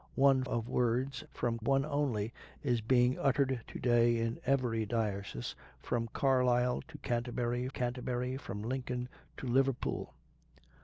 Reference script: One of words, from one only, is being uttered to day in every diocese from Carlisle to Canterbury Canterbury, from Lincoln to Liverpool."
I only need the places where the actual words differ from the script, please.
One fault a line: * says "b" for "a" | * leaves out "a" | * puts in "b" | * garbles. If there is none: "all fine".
all fine